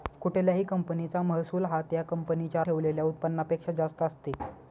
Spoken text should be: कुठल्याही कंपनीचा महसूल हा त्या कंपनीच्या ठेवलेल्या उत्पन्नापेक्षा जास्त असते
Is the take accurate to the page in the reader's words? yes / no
yes